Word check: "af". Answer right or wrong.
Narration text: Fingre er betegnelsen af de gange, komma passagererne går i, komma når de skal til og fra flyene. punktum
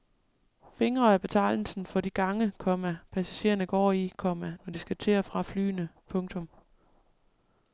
wrong